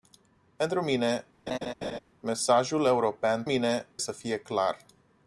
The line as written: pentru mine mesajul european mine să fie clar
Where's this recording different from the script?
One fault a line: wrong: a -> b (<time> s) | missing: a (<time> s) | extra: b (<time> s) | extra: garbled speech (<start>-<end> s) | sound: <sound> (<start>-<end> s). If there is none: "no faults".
sound: laugh (1.5-2.0 s)